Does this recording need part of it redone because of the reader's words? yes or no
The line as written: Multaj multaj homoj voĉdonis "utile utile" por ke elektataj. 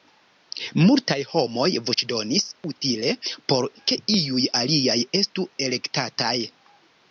yes